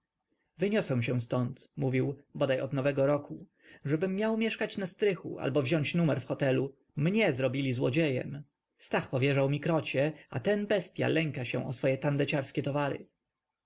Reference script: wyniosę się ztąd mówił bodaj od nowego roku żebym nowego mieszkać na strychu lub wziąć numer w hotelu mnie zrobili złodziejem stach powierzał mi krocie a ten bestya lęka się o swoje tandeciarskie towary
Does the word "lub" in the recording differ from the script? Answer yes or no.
yes